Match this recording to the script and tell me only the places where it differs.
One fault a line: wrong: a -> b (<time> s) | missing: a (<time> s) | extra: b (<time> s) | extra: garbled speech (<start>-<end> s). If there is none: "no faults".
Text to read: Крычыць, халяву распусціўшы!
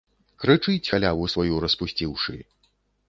extra: сваю (1.3 s)